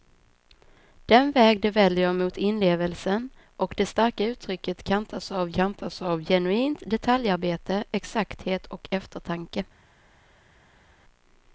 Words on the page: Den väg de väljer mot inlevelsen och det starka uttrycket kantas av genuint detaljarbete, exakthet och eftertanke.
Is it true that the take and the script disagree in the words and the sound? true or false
true